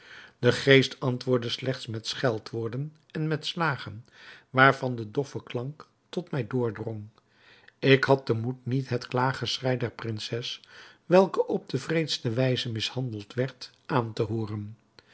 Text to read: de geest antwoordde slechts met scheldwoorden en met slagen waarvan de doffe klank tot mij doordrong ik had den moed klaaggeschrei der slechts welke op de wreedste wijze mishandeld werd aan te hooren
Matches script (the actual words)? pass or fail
fail